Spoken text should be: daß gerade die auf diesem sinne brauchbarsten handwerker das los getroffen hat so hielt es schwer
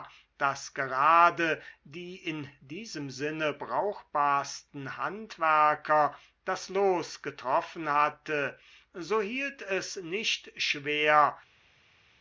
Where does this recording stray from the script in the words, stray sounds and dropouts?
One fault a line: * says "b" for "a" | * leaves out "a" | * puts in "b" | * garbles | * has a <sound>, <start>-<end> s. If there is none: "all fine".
* says "in" for "auf"
* says "hatte" for "hat"
* puts in "nicht"